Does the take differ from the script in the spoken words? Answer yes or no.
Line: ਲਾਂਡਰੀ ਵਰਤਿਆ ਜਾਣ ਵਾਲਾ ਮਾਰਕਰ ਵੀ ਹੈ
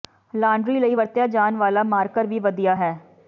yes